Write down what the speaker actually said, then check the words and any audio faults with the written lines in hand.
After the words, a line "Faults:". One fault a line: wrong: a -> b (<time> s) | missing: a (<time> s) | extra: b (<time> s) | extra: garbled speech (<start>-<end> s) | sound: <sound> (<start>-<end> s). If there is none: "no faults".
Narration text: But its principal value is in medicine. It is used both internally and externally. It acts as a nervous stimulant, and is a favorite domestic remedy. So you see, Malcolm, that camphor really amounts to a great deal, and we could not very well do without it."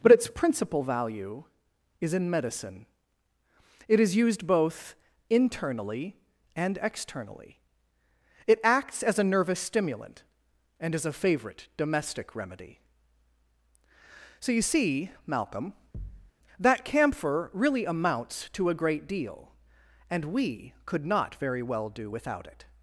But its principal value is in medicine. It is used both internally and externally. It acts as a nervous stimulant, and is a favorite domestic remedy. So you see, Malcolm, that camphor really amounts to a great deal, and we could not very well do without it."
Faults:
sound: thud (15.9-16.3 s)